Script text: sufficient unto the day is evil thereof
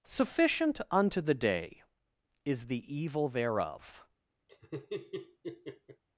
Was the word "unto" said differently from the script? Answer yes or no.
no